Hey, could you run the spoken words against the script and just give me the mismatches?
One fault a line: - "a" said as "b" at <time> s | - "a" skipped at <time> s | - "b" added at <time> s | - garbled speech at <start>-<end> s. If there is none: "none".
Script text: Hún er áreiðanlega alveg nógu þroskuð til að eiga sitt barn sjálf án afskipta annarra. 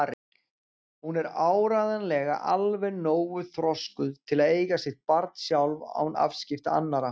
none